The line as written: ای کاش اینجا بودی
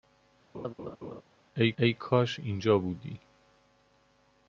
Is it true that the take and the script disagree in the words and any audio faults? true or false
true